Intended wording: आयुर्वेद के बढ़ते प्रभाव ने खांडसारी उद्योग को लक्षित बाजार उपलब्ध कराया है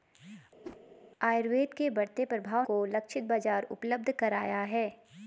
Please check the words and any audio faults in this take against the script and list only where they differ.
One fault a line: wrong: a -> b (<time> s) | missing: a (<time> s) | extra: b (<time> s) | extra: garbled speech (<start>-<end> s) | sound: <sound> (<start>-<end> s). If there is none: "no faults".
sound: whoosh (0.6-0.8 s)
missing: ने खांडसारी उद्योग (2.6 s)